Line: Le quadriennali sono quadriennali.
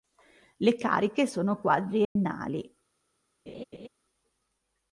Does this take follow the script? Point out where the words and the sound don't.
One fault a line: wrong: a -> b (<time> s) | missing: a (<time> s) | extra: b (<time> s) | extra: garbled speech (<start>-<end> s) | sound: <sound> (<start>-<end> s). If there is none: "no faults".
wrong: quadriennali -> cariche (0.8 s)
sound: dropout (2.0-2.2 s)
sound: laugh (3.5-3.9 s)